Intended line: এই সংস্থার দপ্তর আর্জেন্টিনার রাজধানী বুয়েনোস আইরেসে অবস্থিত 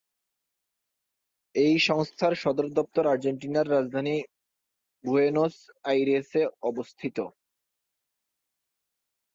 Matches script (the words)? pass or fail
fail